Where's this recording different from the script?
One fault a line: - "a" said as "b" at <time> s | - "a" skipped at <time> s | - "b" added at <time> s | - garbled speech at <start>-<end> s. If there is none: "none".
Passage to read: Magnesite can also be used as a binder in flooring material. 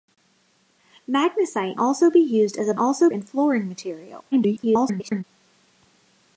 - "can" skipped at 1.8 s
- "binder" said as "also" at 2.8 s
- garbled speech at 4.3-5.2 s